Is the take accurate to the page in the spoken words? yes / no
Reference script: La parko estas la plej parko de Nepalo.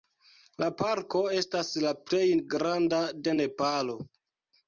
no